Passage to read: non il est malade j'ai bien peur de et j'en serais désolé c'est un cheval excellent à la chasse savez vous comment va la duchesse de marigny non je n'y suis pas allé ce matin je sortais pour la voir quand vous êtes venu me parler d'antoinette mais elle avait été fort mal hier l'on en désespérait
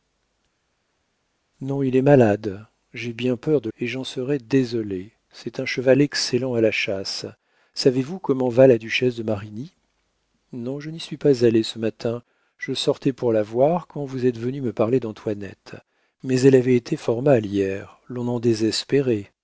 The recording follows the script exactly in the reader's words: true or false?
true